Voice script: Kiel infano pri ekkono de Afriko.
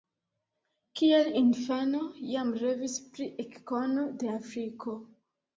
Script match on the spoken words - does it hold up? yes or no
no